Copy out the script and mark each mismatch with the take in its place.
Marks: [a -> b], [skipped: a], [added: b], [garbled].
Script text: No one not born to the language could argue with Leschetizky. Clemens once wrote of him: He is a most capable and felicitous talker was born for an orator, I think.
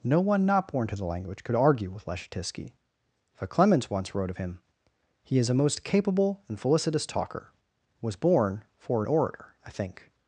No one not born to the language could argue with Leschetizky. [added: for] Clemens once wrote of him: He is a most capable and felicitous talker was born for an orator, I think.